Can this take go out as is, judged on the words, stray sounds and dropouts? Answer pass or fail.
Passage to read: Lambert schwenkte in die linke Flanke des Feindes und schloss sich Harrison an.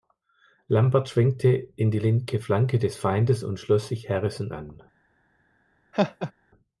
fail